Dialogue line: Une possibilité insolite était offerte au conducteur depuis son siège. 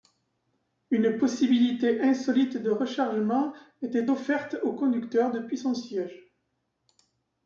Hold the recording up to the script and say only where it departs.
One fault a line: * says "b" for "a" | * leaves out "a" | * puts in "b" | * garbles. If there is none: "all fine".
* puts in "de rechargement"